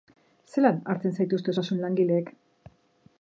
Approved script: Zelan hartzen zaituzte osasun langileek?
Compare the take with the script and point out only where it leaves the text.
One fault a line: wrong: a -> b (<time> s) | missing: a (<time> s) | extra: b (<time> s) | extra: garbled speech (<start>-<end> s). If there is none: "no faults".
no faults